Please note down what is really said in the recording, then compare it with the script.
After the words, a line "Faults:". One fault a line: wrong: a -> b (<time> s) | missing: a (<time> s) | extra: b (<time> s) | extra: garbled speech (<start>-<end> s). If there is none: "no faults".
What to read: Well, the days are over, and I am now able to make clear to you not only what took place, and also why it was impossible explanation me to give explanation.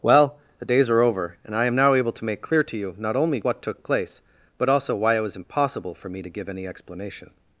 Well, the days are over, and I am now able to make clear to you not only what took place, but also why it was impossible for me to give any explanation.
Faults:
wrong: and -> but (4.6 s)
wrong: explanation -> for (6.0 s)
extra: any (6.5 s)